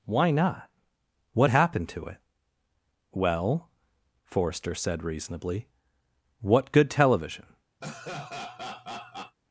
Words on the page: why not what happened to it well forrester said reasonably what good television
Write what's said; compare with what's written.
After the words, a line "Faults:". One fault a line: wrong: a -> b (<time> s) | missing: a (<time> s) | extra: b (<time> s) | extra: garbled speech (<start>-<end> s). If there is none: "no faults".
why not what happened to it well forrester said reasonably what good television
Faults:
no faults